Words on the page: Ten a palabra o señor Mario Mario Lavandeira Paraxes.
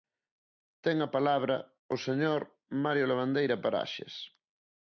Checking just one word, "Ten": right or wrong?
right